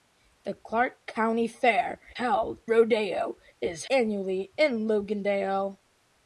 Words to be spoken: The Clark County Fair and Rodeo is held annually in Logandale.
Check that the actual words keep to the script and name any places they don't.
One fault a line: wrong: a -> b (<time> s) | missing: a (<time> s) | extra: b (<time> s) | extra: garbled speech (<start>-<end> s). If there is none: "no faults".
wrong: and -> held (2.1 s)
missing: held (3.8 s)